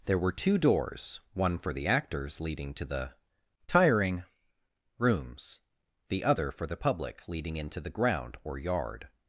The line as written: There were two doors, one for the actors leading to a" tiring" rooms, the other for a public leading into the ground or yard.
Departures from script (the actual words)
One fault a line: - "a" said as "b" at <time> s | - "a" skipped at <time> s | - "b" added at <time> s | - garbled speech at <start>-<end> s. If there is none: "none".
- "a" said as "the" at 2.9 s
- "a" said as "the" at 6.7 s